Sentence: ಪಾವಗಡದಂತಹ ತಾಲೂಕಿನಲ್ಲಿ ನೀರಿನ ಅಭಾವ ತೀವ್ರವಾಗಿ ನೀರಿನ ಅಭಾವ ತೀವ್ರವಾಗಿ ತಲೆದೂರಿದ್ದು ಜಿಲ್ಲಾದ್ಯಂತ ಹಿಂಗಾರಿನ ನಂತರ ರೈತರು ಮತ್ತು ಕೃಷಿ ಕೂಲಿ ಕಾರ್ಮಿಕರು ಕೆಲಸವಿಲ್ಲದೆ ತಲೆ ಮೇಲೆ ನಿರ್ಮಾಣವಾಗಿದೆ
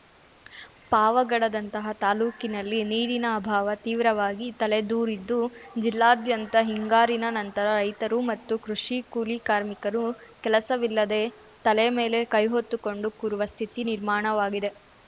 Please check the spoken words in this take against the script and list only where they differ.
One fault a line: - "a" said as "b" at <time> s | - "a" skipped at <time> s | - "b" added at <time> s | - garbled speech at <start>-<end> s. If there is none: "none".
- "ನೀರಿನ ಅಭಾವ ತೀವ್ರವಾಗಿ" skipped at 4.5 s
- "ಕೈಹೊತ್ತುಕೊಂಡು ಕೂರುವ ಸ್ಥಿತಿ" added at 12.3 s